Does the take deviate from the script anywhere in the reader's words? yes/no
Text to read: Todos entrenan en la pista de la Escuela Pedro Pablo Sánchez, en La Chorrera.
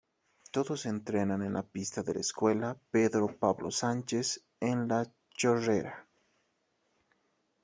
no